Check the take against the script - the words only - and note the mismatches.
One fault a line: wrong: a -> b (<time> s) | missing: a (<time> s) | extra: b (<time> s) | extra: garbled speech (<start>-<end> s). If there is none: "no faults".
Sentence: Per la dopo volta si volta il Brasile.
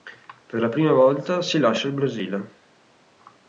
wrong: dopo -> prima (0.7 s)
wrong: volta -> lascia (1.6 s)